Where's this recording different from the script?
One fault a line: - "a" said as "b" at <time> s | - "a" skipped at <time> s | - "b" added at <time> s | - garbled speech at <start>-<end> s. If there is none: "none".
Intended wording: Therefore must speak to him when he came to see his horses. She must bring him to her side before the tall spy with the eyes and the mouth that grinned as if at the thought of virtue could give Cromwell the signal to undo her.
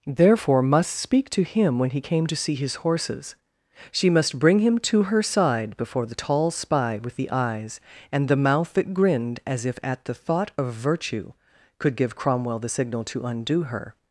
none